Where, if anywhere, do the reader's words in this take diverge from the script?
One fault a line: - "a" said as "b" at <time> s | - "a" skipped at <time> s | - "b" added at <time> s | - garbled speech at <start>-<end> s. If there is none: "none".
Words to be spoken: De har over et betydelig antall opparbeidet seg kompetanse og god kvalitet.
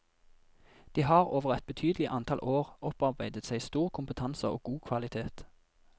- "år" added at 2.5 s
- "stor" added at 3.7 s